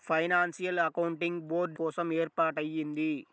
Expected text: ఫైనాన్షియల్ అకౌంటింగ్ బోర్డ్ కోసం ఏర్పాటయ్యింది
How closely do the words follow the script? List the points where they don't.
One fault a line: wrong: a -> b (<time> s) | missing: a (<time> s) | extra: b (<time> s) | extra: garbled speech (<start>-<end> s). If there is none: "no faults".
no faults